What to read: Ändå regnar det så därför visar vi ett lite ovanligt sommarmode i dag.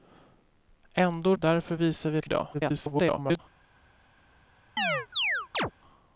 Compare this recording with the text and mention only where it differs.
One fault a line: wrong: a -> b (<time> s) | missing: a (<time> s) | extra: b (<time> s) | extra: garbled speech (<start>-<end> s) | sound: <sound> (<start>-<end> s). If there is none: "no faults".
missing: regnar det så (1.4 s)
missing: lite ovanligt sommarmode (2.3 s)
extra: garbled speech (2.5-3.4 s)
sound: chirp (4.8-5.7 s)